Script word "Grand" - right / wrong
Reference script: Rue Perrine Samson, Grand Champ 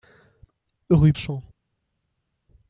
wrong